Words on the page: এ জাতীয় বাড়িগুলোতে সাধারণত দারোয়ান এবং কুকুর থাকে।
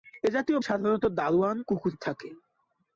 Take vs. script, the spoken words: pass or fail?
fail